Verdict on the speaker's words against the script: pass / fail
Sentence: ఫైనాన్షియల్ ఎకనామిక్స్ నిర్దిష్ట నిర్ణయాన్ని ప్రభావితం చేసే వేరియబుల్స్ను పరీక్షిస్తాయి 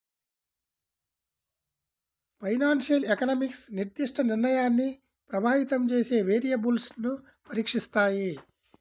pass